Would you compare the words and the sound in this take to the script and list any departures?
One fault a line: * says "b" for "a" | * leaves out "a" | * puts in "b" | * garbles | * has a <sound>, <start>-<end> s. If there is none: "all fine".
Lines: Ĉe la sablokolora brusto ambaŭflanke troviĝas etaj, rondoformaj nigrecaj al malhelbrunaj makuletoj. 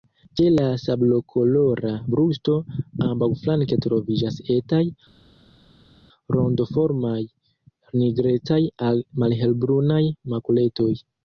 all fine